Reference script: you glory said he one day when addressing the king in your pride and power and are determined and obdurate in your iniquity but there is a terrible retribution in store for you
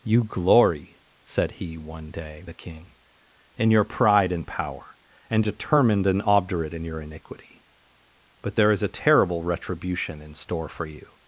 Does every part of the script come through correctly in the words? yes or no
no